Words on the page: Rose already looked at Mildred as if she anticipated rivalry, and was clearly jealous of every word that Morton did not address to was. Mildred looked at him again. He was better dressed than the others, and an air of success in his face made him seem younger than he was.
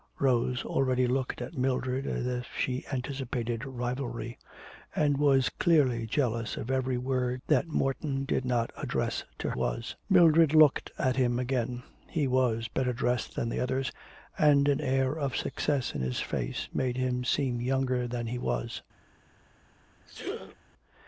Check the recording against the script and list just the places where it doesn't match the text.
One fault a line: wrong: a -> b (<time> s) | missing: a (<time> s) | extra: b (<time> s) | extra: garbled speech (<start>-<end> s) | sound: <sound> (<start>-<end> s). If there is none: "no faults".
sound: sneeze (20.1-20.6 s)